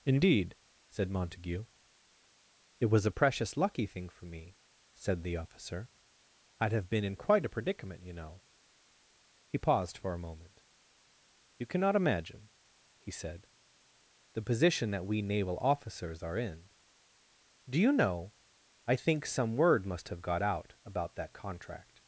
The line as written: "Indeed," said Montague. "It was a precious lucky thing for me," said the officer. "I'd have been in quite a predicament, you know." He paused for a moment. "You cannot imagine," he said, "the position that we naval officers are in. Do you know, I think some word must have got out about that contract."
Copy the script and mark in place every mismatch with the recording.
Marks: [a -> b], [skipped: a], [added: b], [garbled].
"Indeed," said Montague. "It was a precious lucky thing for me," said the officer. "I'd have been in quite a predicament, you know." He paused for a moment. "You cannot imagine," he said, "the position that we naval officers are in. Do you know, I think some word must have got out about that contract."